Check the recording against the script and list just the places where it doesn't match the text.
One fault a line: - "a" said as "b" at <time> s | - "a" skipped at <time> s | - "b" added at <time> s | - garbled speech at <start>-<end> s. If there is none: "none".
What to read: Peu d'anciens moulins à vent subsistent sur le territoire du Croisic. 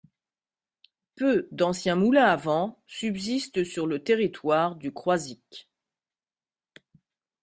none